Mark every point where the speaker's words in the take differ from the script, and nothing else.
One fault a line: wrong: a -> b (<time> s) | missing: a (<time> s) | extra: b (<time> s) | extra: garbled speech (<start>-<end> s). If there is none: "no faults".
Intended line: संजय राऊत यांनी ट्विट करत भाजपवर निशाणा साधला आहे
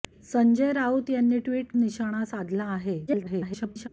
missing: करत भाजपवर (1.7 s)
extra: garbled speech (3.1-3.9 s)